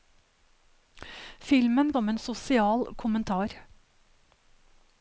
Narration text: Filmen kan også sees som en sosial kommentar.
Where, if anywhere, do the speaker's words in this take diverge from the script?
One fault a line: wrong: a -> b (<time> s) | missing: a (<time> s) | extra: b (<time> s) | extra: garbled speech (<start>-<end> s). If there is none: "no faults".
missing: kan også sees (1.9 s)